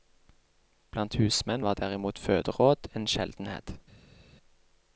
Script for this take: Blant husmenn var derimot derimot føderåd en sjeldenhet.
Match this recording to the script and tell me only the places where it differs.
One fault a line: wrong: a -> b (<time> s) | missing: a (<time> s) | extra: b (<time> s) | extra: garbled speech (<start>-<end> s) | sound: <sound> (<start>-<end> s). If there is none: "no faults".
missing: derimot (2.2 s)